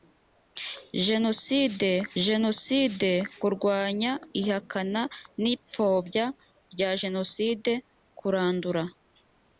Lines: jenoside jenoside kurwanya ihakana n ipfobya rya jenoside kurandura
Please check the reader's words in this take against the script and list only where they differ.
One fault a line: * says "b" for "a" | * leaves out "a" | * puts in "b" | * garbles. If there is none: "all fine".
all fine